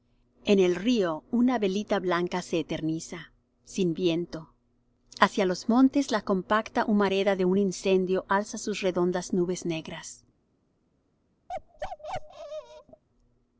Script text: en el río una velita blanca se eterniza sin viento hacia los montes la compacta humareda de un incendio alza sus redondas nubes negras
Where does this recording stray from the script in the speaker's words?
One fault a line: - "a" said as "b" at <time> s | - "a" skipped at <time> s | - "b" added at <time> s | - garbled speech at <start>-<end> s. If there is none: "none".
none